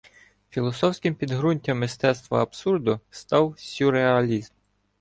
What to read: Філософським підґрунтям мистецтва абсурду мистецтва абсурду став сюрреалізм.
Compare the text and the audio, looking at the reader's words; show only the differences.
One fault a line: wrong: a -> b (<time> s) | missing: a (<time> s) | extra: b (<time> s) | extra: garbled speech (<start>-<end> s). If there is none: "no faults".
missing: мистецтва абсурду (3.0 s)